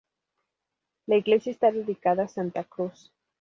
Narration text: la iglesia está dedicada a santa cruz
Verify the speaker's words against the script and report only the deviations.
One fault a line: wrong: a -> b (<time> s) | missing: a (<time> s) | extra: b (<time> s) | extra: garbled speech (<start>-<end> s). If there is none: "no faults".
no faults